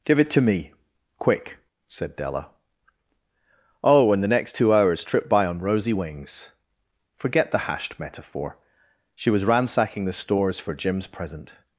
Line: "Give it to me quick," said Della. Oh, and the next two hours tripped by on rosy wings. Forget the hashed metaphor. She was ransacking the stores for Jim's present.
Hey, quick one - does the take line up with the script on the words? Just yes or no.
yes